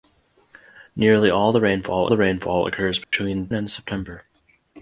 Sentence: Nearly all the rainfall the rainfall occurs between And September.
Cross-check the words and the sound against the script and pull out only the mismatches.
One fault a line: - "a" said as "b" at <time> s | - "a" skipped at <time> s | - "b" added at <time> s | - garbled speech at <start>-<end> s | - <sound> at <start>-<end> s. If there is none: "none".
- dropout at 3.0-3.1 s